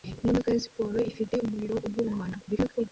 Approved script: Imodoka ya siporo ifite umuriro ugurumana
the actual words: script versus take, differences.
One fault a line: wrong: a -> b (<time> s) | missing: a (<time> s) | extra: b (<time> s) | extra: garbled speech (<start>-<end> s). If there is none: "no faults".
extra: garbled speech (2.4-2.9 s)